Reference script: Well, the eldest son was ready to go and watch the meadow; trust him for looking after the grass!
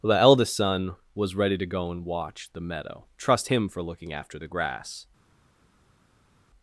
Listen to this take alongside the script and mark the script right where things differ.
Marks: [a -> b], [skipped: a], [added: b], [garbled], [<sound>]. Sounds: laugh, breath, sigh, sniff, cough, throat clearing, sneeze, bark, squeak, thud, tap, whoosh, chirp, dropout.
Well, the eldest son was ready to go and watch the meadow; trust him for looking after the grass!